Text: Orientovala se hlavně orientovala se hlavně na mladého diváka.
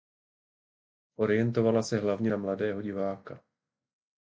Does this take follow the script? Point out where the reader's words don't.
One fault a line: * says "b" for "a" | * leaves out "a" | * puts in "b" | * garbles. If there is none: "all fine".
* leaves out "orientovala se hlavně"